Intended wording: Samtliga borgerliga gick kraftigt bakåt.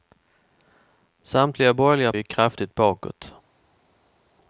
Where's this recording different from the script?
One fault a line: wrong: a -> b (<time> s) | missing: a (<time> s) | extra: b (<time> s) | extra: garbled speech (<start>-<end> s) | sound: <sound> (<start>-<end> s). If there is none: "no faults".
no faults